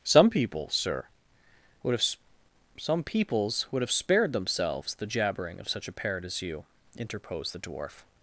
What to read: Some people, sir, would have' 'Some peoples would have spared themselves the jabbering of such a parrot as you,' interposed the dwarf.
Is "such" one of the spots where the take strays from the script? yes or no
no